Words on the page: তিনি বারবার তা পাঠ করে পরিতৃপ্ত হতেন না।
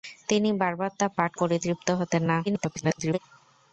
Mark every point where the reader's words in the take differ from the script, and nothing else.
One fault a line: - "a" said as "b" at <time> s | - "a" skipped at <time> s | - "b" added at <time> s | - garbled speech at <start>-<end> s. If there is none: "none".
- "করে" skipped at 1.3 s
- garbled speech at 2.5-3.2 s